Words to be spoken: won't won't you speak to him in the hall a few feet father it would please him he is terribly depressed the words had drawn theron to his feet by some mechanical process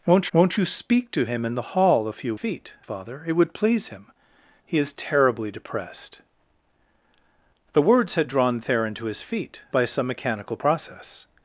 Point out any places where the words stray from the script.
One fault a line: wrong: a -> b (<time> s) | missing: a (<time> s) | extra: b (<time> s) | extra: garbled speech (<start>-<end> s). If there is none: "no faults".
no faults